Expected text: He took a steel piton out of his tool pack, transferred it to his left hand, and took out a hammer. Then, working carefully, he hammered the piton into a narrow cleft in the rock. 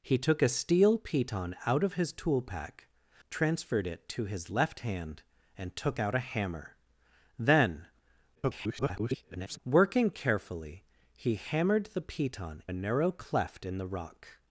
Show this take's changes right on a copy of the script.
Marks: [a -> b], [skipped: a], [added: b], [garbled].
He took a steel piton out of his tool pack, transferred it to his left hand, and took out a hammer. Then, [garbled] working carefully, he hammered the piton [skipped: into] a narrow cleft in the rock.